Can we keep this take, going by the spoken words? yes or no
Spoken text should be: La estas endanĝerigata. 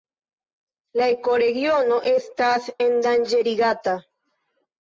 no